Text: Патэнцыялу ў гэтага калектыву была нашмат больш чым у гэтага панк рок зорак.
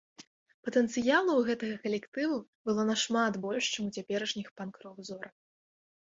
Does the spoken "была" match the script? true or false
false